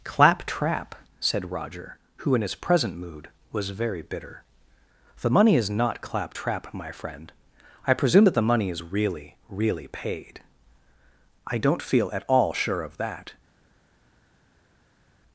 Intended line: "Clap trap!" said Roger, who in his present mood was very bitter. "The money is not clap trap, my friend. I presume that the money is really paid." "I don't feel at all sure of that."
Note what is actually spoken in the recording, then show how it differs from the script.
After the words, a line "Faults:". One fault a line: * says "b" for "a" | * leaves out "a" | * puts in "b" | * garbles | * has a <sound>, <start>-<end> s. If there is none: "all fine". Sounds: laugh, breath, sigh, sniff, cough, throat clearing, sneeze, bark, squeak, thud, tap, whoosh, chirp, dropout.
"Clap trap!" said Roger, who in his present mood was very bitter. "The money is not clap trap, my friend. I presume that the money is really really paid." "I don't feel at all sure of that."
Faults:
* puts in "really"